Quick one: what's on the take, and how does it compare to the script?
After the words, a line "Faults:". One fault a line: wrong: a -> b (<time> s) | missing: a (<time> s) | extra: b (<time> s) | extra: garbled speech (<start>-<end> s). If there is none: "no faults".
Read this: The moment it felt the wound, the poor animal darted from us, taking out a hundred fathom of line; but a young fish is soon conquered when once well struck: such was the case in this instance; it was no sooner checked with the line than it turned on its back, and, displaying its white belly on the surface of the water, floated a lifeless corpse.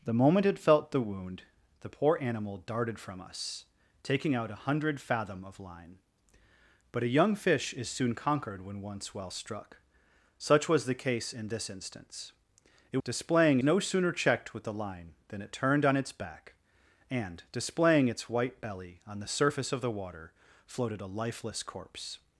The moment it felt the wound, the poor animal darted from us, taking out a hundred fathom of line; but a young fish is soon conquered when once well struck: such was the case in this instance; it displaying no sooner checked with the line than it turned on its back, and, displaying its white belly on the surface of the water, floated a lifeless corpse.
Faults:
wrong: was -> displaying (13.0 s)